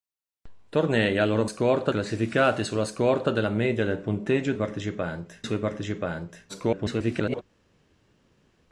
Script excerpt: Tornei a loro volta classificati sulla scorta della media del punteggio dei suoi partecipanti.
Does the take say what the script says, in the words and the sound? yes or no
no